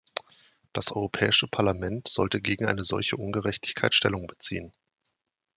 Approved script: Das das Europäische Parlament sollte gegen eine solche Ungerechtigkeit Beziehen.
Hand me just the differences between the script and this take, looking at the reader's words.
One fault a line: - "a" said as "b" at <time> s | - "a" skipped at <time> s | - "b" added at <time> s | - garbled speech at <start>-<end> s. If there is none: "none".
- "das" skipped at 0.9 s
- "Stellung" added at 4.0 s